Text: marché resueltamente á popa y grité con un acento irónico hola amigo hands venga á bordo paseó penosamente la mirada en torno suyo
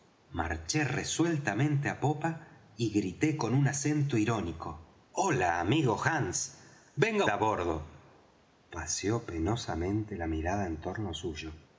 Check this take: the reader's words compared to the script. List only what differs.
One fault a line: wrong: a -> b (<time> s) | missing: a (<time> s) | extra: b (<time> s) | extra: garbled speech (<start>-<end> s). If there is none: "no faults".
no faults